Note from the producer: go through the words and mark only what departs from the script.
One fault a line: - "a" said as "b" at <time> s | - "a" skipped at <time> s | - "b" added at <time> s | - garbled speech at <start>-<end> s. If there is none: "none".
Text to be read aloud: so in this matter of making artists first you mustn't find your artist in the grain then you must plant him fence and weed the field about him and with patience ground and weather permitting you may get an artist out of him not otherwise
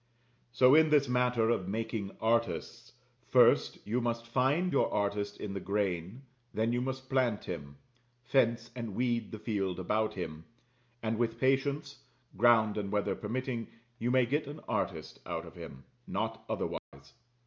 - "mustn't" said as "must" at 4.0 s